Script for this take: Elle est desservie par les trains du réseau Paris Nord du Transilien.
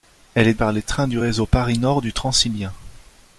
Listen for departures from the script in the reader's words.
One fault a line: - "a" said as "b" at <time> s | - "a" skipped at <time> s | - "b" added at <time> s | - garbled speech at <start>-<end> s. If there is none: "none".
- "desservie" skipped at 0.6 s